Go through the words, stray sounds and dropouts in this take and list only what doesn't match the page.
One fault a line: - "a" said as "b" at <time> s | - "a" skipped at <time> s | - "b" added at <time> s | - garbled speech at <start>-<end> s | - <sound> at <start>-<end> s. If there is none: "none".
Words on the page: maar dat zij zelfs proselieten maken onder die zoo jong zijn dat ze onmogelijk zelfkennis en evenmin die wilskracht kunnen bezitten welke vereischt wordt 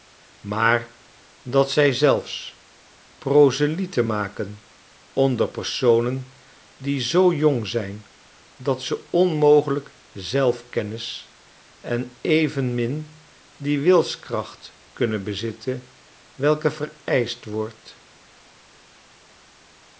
- "personen" added at 5.5 s